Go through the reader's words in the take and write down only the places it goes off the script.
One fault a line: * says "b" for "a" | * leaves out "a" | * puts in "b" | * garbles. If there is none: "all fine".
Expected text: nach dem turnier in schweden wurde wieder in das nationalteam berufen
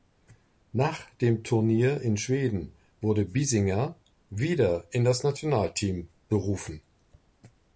* puts in "biesinger"